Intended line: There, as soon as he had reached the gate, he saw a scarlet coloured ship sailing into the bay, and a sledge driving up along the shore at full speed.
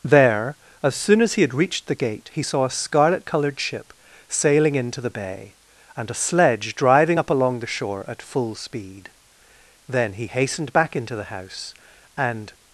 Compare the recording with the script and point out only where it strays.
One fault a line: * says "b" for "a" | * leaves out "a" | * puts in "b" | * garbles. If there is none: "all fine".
* puts in "Then he hastened back into the house and"